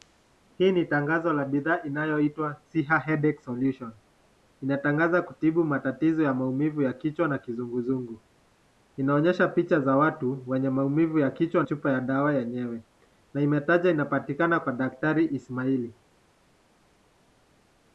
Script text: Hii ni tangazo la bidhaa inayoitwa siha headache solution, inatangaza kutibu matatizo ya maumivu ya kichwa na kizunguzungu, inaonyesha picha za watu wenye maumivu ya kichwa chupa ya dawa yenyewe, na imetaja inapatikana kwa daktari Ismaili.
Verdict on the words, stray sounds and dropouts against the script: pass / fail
pass